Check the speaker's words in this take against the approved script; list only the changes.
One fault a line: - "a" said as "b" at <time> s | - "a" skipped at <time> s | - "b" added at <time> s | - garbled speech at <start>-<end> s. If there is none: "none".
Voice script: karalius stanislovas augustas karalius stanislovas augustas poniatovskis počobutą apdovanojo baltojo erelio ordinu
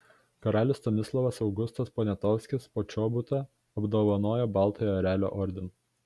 - "karalius stanislovas augustas" skipped at 1.9 s